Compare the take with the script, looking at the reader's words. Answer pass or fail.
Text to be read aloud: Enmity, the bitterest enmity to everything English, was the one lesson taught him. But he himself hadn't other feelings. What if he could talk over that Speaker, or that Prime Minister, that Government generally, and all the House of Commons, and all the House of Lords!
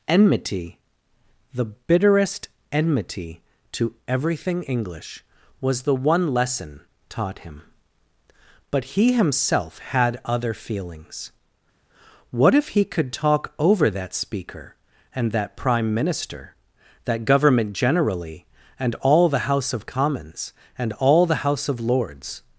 fail